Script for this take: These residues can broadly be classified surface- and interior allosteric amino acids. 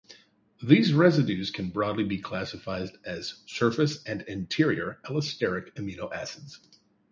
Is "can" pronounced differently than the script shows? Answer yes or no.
no